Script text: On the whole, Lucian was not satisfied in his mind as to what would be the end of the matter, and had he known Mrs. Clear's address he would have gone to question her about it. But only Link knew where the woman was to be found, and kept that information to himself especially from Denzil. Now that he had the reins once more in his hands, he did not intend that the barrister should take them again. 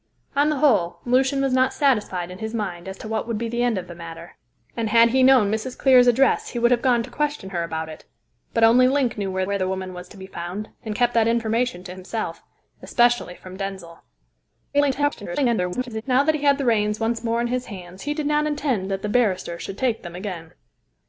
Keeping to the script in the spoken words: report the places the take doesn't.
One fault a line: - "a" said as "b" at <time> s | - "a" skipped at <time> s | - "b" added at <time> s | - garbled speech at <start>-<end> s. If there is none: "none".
- "where" added at 9.4 s
- garbled speech at 14.7-16.0 s